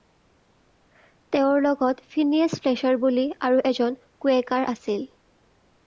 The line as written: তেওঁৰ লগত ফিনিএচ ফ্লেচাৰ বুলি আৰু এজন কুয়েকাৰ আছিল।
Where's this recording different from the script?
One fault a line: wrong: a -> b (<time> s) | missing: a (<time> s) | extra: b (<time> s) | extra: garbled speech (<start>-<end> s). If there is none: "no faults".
no faults